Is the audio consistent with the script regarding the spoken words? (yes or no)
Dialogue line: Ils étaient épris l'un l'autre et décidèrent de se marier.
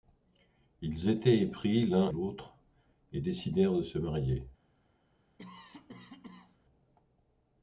yes